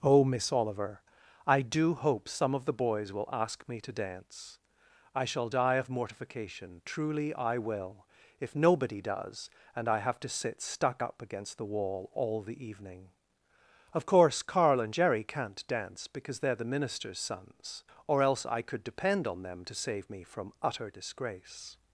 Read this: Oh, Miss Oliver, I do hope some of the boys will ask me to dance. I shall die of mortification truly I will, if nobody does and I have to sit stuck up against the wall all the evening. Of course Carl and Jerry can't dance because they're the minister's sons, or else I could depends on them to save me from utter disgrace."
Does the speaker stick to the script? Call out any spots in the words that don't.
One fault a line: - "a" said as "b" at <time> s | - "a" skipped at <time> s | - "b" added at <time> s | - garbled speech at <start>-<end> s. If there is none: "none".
- "depends" said as "depend" at 18.8 s